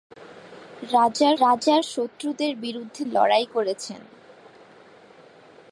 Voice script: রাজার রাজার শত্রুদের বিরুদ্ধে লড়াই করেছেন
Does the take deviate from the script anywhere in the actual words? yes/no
no